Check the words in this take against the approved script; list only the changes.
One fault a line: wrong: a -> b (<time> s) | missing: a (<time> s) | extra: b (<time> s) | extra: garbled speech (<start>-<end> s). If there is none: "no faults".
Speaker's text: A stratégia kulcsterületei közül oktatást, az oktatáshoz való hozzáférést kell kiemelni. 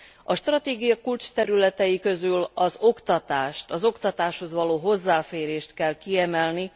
extra: az (2.5 s)